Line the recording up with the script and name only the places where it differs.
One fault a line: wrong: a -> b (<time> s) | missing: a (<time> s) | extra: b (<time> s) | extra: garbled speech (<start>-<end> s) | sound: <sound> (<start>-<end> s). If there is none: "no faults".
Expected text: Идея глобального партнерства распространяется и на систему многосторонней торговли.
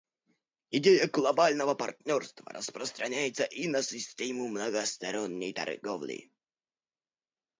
no faults